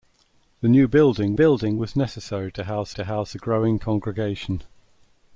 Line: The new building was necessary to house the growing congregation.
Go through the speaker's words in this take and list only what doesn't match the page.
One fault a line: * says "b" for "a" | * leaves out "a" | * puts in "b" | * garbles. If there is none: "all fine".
* puts in "building"
* puts in "to house"